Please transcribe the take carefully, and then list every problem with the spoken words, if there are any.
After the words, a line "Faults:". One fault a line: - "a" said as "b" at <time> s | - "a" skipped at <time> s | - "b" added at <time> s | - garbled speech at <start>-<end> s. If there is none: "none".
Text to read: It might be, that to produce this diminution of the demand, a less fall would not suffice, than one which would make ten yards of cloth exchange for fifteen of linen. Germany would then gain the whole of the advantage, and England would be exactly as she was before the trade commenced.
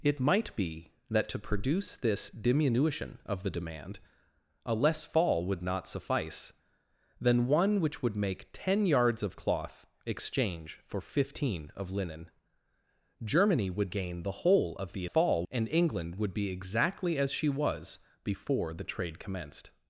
It might be, that to produce this diminution of the demand, a less fall would not suffice, than one which would make ten yards of cloth exchange for fifteen of linen. Germany would gain the whole of the fall, and England would be exactly as she was before the trade commenced.
Faults:
- "then" skipped at 13.9 s
- "advantage" said as "fall" at 15.1 s